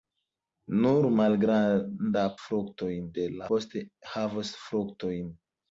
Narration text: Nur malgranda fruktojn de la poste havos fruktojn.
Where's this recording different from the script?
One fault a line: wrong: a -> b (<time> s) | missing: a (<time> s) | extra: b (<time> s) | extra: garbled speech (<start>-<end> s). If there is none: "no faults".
no faults